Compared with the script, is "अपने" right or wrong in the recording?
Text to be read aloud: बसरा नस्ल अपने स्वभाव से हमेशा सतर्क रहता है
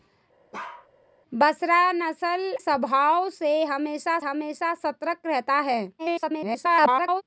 wrong